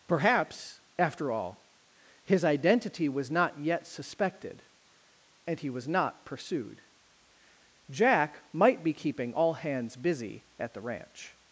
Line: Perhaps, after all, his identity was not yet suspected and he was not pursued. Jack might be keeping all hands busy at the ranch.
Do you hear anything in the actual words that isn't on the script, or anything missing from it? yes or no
no